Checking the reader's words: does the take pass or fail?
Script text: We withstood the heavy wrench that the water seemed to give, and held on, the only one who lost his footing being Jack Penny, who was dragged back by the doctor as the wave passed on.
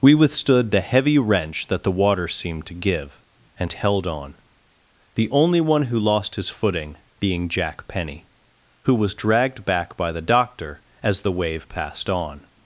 pass